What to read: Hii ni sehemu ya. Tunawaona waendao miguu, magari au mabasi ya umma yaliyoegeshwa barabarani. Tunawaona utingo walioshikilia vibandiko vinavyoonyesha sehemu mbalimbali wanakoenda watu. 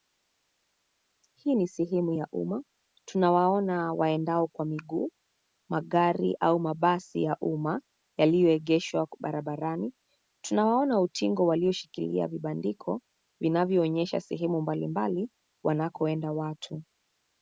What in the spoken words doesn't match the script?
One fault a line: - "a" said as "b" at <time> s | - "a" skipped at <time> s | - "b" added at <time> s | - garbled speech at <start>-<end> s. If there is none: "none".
- "umma" added at 2.3 s
- "kwa" added at 4.5 s